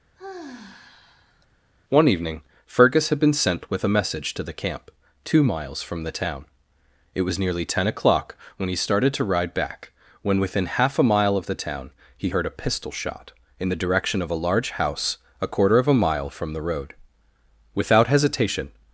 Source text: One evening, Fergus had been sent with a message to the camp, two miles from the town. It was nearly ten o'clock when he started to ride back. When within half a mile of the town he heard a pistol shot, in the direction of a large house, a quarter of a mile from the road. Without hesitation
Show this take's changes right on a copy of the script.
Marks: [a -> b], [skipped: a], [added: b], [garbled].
One evening, Fergus had been sent with a message to the camp, two miles from the town. It was nearly ten o'clock when he started to ride back. When within half a mile of the town he heard a pistol shot, in the direction of a large house, a quarter of a mile from the road. Without hesitation